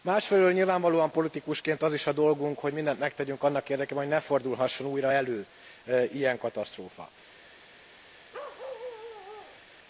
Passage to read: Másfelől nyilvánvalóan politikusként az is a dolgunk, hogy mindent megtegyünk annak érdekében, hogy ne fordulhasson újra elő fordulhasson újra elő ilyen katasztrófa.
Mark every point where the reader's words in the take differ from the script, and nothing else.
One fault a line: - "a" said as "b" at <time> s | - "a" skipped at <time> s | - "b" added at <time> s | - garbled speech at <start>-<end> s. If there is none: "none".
- "fordulhasson újra elő" skipped at 5.5 s